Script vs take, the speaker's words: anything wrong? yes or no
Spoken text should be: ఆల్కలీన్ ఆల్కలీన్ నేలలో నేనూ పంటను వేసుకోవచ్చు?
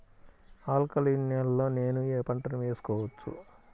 yes